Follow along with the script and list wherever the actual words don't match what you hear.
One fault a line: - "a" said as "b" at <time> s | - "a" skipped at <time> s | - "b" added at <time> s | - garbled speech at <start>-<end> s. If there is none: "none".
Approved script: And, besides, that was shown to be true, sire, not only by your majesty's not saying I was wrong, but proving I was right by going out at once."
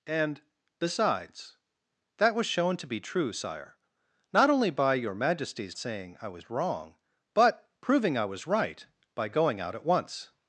- "not" skipped at 5.8 s